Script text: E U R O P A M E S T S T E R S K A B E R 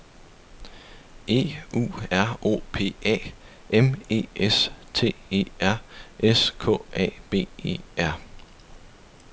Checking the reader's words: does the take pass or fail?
fail